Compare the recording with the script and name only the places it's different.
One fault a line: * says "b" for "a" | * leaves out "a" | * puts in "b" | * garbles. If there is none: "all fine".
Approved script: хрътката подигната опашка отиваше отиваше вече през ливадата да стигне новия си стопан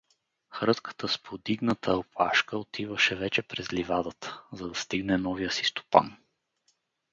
* puts in "с"
* leaves out "отиваше"
* puts in "за"